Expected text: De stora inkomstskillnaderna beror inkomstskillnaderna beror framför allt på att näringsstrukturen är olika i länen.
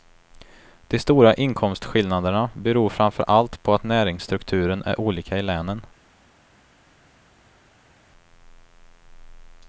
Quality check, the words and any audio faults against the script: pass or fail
fail